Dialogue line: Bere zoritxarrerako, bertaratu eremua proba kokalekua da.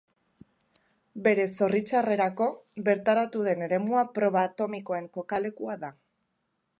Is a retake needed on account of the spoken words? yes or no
yes